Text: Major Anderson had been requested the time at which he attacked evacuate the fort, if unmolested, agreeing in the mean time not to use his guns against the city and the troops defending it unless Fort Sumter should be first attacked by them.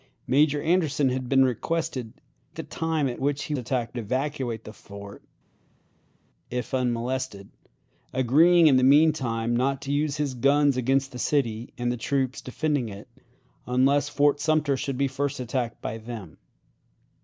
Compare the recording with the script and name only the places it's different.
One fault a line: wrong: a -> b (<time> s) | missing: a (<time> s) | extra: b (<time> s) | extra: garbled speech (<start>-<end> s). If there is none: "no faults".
no faults